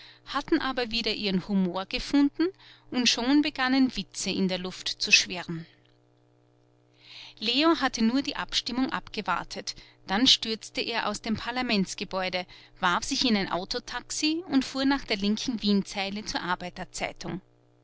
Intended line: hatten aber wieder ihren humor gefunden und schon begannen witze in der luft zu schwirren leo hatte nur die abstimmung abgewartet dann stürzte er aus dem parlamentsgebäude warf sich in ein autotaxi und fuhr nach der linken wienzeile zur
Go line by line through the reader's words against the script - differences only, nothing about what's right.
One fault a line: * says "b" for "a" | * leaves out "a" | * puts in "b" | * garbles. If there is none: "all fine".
all fine